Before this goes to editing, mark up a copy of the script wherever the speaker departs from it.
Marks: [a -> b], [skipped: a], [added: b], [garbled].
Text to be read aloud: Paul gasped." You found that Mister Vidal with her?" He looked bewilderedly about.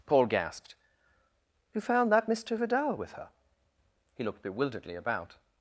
Paul gasped." You found that Mister Vidal with her?" He looked bewilderedly about.